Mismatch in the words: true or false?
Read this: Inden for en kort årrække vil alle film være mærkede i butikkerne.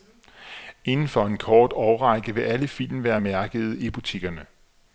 false